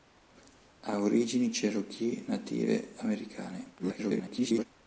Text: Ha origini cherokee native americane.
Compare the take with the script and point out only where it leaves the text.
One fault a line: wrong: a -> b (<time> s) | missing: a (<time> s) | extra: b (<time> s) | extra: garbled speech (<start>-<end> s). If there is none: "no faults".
extra: garbled speech (3.8-4.6 s)